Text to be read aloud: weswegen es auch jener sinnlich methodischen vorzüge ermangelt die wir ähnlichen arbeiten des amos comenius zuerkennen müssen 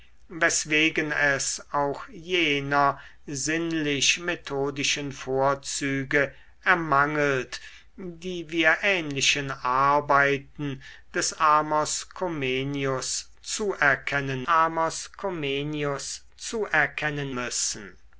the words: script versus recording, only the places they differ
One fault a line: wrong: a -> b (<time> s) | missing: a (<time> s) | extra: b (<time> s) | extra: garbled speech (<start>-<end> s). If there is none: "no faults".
extra: amos comenius zuerkennen (14.5 s)